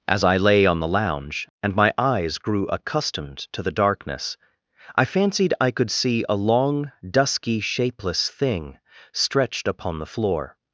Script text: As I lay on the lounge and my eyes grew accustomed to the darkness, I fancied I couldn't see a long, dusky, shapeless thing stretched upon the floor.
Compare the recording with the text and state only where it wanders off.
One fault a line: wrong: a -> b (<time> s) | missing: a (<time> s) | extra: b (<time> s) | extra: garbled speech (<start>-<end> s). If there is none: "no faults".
wrong: couldn't -> could (5.7 s)